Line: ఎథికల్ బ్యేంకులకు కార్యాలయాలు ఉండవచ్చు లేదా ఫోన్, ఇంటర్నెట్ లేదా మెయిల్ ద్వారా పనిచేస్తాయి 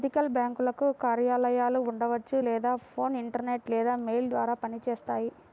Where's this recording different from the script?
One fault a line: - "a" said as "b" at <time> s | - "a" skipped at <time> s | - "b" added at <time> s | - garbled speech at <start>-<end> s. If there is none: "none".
none